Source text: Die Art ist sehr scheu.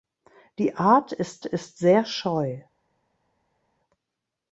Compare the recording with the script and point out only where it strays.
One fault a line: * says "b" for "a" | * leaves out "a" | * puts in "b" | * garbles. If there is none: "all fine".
* puts in "ist"